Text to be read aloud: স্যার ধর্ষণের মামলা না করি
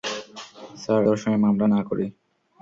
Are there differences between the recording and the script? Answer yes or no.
no